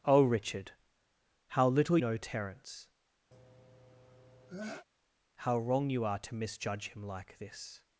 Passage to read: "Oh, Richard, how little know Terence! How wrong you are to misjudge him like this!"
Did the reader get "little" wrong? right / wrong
right